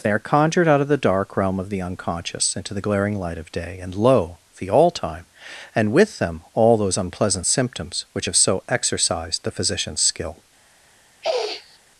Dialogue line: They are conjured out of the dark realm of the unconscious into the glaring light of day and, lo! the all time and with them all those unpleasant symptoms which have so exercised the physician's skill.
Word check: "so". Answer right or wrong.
right